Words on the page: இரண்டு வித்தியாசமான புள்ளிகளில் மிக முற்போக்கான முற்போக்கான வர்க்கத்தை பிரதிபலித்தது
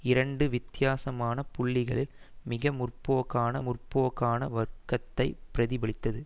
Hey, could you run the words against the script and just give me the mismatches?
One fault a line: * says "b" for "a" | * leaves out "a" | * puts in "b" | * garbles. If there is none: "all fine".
all fine